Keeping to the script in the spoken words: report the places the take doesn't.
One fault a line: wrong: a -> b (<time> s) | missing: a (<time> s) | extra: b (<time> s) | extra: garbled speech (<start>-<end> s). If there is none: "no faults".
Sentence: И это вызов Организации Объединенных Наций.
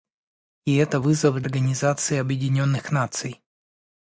no faults